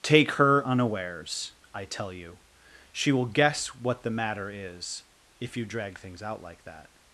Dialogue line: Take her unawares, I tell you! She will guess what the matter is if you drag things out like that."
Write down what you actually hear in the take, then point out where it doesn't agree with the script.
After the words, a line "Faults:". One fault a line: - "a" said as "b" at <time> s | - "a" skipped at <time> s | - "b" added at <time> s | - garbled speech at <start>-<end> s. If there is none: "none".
Take her unawares, I tell you! She will guess what the matter is if you drag things out like that."
Faults:
none